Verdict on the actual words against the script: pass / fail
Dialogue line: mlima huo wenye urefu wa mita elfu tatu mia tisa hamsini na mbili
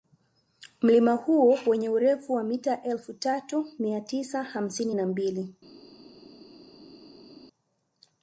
pass